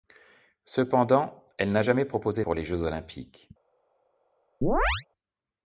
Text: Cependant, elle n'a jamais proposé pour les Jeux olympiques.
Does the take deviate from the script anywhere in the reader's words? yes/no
no